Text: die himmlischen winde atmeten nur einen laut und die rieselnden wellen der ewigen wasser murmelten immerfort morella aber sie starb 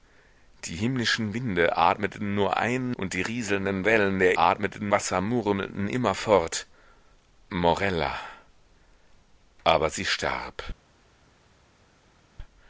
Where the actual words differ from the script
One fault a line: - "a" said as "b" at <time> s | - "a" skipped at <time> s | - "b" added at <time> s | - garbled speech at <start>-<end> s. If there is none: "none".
- "laut" skipped at 3.0 s
- "ewigen" said as "atmeten" at 4.4 s